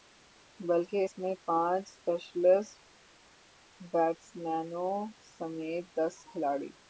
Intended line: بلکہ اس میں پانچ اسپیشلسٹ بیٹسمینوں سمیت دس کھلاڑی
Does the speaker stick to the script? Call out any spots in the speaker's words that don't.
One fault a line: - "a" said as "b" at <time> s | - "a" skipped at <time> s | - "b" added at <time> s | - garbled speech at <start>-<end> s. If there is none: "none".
none